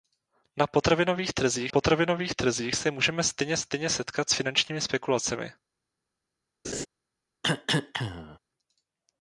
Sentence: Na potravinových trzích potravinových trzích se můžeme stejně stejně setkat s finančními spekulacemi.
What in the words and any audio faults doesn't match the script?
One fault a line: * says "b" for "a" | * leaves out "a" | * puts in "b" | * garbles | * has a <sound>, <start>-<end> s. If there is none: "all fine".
* has a laugh, 6.6-6.9 s
* has a cough, 7.4-8.4 s